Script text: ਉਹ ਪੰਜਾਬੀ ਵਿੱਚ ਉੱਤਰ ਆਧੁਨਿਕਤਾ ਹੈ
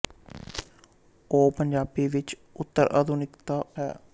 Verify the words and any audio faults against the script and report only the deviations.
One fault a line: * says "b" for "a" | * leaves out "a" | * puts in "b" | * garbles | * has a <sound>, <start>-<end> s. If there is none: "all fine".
all fine